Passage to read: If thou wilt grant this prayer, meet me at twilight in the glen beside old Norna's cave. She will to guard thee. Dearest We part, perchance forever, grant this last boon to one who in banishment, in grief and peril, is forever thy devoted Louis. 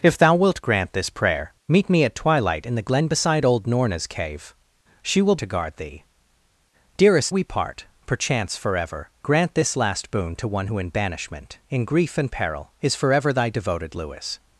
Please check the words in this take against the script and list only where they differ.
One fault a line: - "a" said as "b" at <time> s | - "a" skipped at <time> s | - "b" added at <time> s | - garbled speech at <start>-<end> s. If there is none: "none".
none